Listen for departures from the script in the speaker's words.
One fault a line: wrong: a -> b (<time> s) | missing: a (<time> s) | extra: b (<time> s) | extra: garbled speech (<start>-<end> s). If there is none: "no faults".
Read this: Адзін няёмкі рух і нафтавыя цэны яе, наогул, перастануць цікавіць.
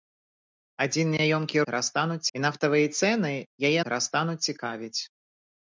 wrong: рух -> перастануць (1.7 s)
missing: наогул (3.8 s)